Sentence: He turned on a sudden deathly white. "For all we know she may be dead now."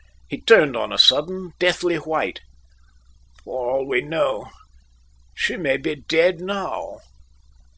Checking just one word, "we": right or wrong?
right